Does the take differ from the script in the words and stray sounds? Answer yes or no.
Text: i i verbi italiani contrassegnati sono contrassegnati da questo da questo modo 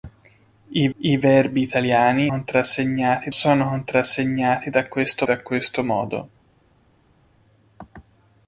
no